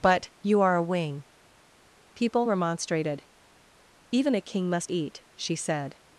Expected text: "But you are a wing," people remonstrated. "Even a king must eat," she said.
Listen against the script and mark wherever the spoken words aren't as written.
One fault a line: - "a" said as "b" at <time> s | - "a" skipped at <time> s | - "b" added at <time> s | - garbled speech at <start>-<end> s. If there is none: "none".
none